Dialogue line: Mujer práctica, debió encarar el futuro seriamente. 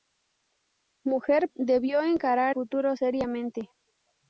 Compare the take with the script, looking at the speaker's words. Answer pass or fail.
fail